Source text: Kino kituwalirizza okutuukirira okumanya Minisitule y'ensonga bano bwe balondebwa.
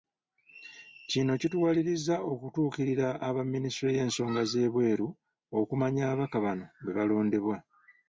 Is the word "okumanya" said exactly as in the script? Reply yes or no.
no